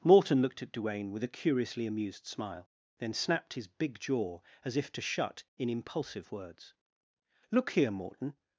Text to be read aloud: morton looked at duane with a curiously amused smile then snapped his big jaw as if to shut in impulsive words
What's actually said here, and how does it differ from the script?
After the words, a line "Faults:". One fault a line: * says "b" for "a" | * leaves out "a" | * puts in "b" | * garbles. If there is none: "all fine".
morton looked at duane with a curiously amused smile then snapped his big jaw as if to shut in impulsive words look here morton
Faults:
* puts in "look here morton"